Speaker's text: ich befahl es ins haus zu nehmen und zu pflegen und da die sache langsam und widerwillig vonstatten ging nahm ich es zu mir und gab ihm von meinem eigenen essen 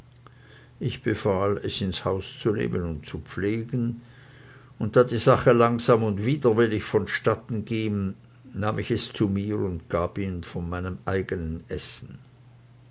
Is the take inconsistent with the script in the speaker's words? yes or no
no